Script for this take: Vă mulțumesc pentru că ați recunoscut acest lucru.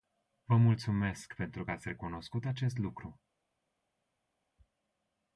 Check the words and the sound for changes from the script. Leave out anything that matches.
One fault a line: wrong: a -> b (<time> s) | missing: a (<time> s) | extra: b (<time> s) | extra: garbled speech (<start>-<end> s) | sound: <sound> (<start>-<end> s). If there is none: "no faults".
no faults